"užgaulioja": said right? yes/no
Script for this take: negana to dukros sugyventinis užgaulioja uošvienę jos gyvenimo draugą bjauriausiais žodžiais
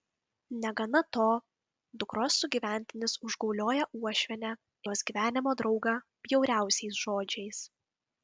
yes